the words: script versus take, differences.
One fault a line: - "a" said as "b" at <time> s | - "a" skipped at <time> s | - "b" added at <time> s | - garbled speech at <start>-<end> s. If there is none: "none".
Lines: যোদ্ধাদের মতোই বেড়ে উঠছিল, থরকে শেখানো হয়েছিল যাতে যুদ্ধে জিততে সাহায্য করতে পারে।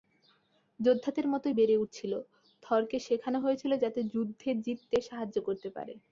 none